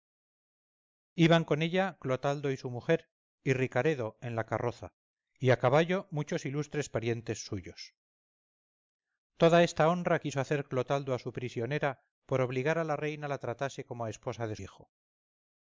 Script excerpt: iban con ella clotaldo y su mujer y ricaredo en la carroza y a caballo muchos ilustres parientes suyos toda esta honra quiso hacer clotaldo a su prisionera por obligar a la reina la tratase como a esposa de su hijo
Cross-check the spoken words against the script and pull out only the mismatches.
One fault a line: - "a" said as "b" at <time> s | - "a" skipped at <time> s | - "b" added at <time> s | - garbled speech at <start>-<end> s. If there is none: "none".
- "su" skipped at 14.6 s